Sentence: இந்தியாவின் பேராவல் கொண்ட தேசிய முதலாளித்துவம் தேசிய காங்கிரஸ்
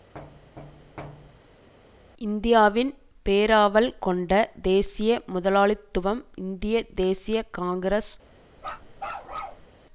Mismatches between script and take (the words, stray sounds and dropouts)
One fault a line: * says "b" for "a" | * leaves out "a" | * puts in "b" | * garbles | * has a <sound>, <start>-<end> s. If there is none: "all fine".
* has a thud, 0.1-1.7 s
* puts in "இந்திய"
* has a bark, 8.6-9.7 s